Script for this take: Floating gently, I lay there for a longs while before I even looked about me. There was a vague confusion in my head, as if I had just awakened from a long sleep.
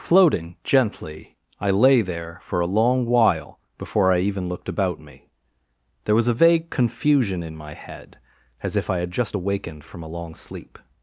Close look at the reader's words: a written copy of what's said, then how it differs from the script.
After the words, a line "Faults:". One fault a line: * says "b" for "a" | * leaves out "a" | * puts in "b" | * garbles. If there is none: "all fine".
Floating gently, I lay there for a long while before I even looked about me. There was a vague confusion in my head, as if I had just awakened from a long sleep.
Faults:
* says "long" for "longs"